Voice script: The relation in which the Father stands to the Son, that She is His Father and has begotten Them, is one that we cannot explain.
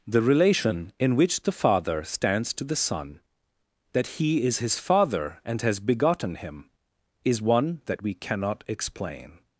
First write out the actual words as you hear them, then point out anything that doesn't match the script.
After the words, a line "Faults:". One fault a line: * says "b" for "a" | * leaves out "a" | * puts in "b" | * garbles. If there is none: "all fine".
The relation in which the Father stands to the Son, that He is His Father and has begotten Him, is one that we cannot explain.
Faults:
* says "He" for "She"
* says "Him" for "Them"